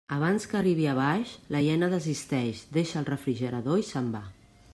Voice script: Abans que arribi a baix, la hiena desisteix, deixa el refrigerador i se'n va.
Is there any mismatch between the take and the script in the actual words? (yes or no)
no